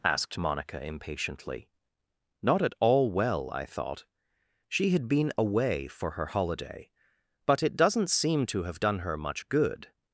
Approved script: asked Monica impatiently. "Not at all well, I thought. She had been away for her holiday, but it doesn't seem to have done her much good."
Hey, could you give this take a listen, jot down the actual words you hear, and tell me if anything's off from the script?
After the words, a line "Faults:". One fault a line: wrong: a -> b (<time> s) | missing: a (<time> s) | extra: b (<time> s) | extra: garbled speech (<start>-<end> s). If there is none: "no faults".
asked Monica impatiently. "Not at all well, I thought. She had been away for her holiday, but it doesn't seem to have done her much good."
Faults:
no faults